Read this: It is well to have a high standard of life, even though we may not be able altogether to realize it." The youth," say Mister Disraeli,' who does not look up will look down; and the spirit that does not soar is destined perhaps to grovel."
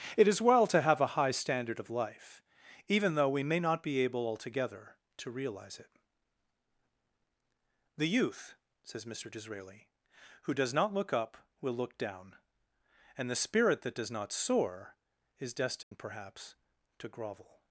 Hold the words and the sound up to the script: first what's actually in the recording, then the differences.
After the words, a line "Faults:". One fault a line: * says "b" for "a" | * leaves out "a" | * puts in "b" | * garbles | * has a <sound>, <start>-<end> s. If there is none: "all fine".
It is well to have a high standard of life, even though we may not be able altogether to realize it." The youth," says Mister Disraeli,' who does not look up will look down; and the spirit that does not soar is destined perhaps to grovel."
Faults:
* says "says" for "say"
* has a dropout, 15.8-15.9 s